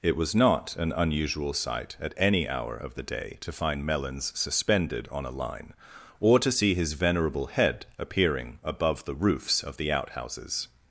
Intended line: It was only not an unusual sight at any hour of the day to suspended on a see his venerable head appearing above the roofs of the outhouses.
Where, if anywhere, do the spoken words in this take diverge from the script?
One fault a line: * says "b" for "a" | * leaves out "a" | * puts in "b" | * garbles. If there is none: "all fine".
* leaves out "only"
* puts in "find Melons"
* puts in "line or to"